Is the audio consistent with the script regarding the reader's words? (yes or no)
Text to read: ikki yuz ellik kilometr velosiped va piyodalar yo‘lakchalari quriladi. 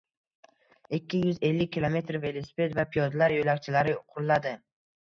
yes